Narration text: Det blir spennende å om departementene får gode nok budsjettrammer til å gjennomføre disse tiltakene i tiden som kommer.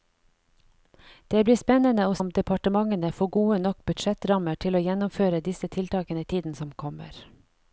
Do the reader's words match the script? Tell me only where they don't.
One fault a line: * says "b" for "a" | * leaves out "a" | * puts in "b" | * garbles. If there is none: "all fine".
all fine